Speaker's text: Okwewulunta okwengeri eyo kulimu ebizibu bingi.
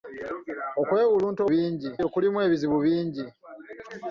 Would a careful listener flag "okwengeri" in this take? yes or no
yes